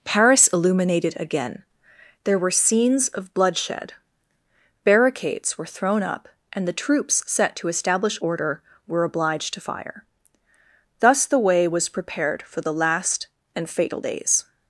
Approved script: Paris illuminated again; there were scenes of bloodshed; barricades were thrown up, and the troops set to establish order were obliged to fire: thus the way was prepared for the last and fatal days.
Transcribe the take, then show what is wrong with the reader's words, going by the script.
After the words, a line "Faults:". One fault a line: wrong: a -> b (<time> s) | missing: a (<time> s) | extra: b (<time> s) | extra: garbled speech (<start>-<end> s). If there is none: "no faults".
Paris illuminated again; there were scenes of bloodshed; barricades were thrown up, and the troops set to establish order were obliged to fire: thus the way was prepared for the last and fatal days.
Faults:
no faults